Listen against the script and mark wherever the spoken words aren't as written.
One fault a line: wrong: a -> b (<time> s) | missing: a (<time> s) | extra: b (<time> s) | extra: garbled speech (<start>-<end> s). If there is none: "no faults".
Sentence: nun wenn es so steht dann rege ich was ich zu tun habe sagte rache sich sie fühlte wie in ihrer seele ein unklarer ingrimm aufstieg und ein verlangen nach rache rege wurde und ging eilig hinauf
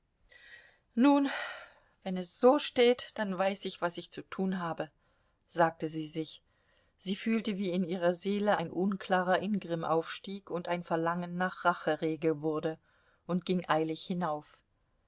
wrong: rege -> weiß (3.4 s)
wrong: rache -> sie (5.9 s)